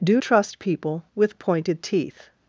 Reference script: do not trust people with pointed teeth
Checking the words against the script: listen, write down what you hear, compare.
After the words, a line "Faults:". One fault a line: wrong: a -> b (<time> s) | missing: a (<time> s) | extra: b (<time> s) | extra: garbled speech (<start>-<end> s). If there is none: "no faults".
do trust people with pointed teeth
Faults:
missing: not (0.2 s)